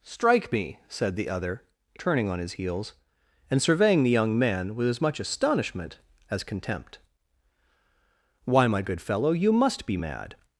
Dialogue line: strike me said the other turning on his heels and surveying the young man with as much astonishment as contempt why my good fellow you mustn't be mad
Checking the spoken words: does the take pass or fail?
fail